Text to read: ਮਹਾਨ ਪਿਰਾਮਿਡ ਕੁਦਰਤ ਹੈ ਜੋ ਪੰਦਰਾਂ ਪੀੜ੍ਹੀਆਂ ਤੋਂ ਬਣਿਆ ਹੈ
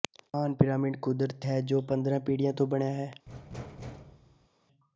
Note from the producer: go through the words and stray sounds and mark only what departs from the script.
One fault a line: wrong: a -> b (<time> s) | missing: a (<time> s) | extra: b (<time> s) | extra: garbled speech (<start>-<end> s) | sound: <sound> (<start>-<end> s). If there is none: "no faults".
sound: thud (3.3-4.5 s)